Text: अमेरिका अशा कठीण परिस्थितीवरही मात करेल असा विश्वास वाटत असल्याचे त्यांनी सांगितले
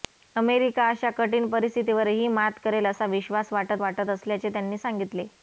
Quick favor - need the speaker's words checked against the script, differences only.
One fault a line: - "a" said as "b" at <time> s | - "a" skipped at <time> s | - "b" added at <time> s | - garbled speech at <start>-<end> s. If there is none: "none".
- "वाटत" added at 3.8 s